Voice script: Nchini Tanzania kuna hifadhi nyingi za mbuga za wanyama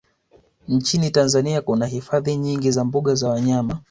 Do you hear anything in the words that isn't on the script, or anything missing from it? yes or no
no